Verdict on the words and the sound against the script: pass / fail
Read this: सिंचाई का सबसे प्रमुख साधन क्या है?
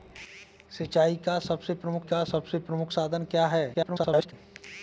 fail